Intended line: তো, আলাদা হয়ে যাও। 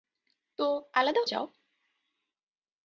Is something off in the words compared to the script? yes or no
yes